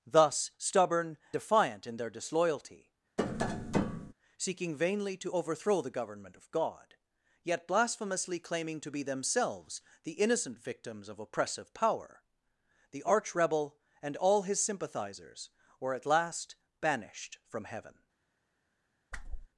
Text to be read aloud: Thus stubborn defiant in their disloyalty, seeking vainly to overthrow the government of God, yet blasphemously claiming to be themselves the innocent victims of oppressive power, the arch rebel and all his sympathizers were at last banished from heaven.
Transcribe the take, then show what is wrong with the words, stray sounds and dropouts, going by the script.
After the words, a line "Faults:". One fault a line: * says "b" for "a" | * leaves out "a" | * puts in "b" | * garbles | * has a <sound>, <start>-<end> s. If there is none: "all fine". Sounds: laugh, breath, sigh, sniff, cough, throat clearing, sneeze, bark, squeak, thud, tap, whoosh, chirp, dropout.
Thus stubborn defiant in their disloyalty, seeking vainly to overthrow the government of God, yet blasphemously claiming to be themselves the innocent victims of oppressive power, the arch rebel and all his sympathizers were at last banished from heaven.
Faults:
* has a tap, 3.2-4.1 s
* has a whoosh, 19.1-19.5 s